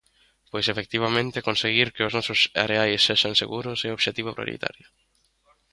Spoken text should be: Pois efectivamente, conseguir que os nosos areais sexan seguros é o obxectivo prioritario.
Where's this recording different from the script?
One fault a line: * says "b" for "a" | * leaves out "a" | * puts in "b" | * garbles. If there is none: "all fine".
all fine